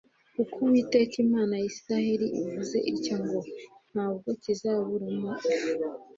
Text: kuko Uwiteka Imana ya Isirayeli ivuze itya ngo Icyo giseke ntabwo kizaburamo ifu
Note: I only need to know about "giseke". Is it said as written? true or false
false